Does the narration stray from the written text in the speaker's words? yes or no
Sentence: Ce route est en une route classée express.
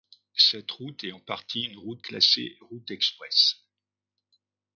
yes